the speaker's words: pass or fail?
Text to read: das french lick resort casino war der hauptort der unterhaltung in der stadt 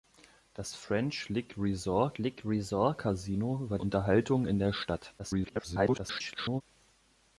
fail